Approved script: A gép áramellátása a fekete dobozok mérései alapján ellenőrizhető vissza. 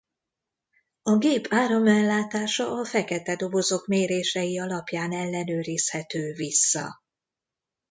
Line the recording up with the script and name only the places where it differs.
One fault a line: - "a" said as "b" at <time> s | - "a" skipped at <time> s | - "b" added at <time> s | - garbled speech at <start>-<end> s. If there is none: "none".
none